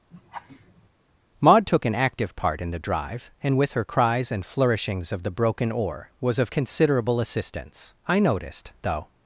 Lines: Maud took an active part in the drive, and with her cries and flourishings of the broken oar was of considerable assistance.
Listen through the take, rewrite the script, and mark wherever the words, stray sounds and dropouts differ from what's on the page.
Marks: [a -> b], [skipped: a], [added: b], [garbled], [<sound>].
[laugh] Maud took an active part in the drive, and with her cries and flourishings of the broken oar was of considerable assistance. [added: I noticed though]